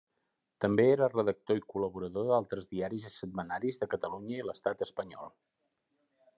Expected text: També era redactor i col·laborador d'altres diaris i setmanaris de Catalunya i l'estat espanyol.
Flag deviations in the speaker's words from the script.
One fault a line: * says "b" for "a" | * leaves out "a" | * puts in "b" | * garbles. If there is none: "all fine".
all fine